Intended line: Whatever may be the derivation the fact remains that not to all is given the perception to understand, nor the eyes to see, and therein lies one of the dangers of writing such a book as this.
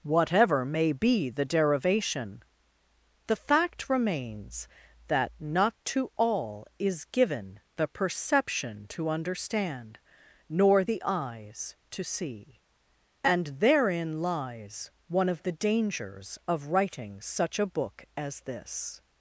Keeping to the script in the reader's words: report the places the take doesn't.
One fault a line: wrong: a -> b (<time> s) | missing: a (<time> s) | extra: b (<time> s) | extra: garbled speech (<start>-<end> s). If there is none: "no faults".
no faults